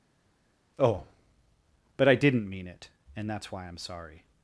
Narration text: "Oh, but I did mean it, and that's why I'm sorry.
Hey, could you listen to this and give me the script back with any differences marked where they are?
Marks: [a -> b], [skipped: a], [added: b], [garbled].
"Oh, but I [did -> didn't] mean it, and that's why I'm sorry.